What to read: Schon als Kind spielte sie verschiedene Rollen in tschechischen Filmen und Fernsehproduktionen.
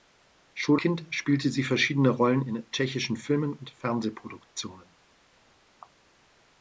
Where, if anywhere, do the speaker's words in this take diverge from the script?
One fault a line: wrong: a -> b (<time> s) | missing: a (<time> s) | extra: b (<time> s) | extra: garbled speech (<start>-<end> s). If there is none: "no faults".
missing: als (0.8 s)